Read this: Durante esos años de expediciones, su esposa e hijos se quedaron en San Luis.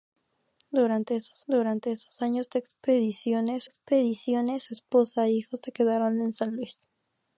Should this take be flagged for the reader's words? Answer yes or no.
yes